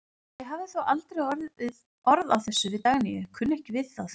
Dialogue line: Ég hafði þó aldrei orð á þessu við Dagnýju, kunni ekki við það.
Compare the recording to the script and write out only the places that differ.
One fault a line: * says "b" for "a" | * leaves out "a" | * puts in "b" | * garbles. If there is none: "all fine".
all fine